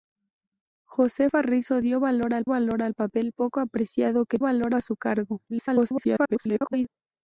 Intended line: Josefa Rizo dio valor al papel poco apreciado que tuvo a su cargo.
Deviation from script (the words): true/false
true